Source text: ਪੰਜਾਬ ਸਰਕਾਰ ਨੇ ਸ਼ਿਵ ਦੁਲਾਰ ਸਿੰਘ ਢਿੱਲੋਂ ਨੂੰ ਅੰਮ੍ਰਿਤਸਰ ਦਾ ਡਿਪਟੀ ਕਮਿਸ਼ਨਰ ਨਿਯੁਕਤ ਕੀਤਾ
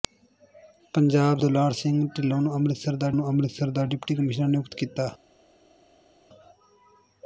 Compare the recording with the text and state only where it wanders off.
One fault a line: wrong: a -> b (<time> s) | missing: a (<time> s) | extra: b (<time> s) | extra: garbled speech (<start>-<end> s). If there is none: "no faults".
wrong: ਸਰਕਾਰ ਨੇ ਸ਼ਿਵ ਦੁਲਾਰ ਸਿੰਘ ਢਿੱਲੋਂ -> ਦੁਲਾਰ ਸਿੰਘ ਢਿੱਲੋਂ ਨੂੰ ਅੰਮ੍ਰਿਤਸਰ ਦਾ (1.4 s)